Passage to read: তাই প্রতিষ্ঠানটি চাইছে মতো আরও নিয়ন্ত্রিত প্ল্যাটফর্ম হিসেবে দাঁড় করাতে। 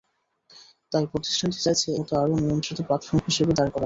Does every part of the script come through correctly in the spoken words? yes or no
yes